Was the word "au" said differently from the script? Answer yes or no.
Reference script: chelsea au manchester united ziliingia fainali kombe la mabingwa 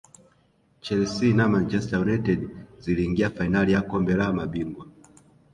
yes